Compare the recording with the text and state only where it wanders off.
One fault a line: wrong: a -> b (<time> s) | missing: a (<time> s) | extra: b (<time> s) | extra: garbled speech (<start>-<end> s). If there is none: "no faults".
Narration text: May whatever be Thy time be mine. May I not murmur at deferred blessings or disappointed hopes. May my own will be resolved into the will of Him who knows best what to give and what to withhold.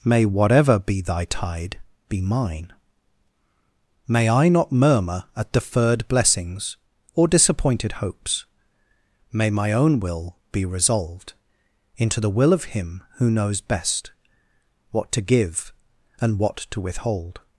wrong: time -> tide (1.2 s)